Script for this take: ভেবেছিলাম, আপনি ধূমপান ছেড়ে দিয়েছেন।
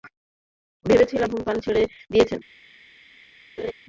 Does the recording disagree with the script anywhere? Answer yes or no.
yes